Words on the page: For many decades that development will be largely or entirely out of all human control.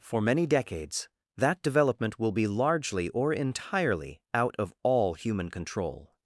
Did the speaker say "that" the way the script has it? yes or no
yes